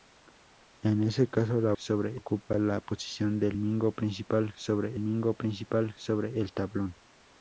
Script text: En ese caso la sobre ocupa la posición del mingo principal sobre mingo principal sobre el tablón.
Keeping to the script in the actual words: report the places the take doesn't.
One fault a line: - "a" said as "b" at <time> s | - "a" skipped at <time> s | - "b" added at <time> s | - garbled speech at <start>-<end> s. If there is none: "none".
none